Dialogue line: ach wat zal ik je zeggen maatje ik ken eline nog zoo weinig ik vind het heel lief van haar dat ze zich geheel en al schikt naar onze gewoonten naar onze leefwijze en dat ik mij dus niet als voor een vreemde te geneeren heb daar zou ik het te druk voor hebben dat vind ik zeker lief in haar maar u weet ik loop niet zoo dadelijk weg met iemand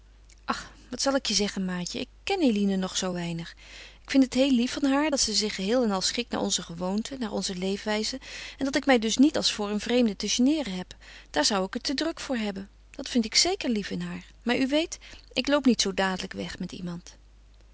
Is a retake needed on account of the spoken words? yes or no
no